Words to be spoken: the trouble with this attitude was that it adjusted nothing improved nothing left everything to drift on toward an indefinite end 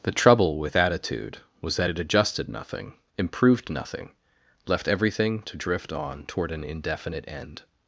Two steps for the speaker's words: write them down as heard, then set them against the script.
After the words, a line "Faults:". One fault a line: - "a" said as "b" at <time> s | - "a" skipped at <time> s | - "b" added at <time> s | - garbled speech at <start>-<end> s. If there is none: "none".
the trouble with attitude was that it adjusted nothing improved nothing left everything to drift on toward an indefinite end
Faults:
- "this" skipped at 0.8 s